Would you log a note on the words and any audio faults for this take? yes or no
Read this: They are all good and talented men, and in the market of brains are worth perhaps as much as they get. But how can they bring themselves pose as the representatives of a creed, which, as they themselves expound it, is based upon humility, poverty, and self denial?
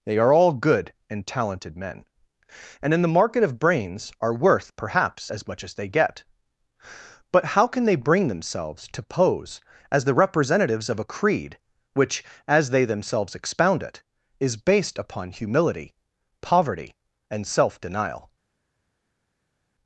yes